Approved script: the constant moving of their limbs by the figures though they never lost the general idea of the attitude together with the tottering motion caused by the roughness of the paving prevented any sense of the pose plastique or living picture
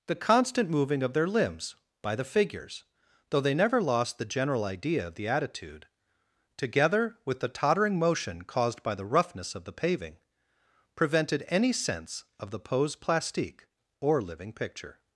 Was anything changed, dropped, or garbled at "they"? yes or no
no